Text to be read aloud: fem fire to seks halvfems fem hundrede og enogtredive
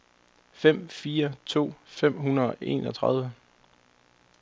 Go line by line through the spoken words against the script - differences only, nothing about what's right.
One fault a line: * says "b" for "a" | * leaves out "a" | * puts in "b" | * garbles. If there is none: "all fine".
* leaves out "seks halvfems"